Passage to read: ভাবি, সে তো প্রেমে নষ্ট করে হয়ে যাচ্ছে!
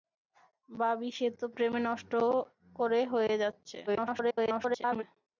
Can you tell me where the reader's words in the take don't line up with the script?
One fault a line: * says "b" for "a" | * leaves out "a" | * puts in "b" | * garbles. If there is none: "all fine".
* garbles